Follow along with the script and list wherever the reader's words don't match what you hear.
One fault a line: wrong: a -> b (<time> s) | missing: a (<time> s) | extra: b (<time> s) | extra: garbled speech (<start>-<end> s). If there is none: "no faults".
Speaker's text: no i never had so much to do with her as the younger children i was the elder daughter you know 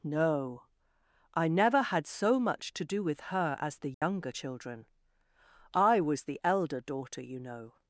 no faults